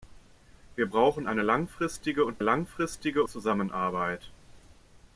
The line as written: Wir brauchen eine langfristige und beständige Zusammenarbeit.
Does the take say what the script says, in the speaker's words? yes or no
no